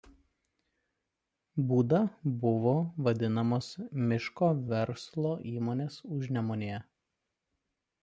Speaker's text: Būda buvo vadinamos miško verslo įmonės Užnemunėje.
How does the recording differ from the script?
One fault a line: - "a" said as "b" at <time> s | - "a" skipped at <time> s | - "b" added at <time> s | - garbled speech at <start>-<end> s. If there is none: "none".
none